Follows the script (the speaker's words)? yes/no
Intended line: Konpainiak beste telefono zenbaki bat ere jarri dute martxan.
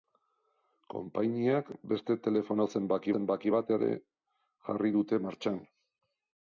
no